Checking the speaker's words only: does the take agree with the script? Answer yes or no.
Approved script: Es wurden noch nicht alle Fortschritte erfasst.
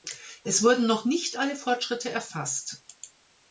yes